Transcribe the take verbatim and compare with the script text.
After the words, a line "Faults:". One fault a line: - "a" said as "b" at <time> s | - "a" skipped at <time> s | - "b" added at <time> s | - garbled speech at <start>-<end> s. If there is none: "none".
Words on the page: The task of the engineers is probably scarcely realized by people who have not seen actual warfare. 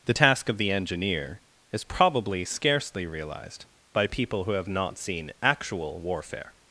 The task of the engineer is probably scarcely realized by people who have not seen actual warfare.
Faults:
- "engineers" said as "engineer" at 0.7 s